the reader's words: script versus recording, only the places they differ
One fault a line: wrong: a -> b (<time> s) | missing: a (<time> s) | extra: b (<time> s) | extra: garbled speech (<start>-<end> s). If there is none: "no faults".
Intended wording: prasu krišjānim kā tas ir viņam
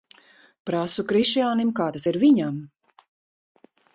no faults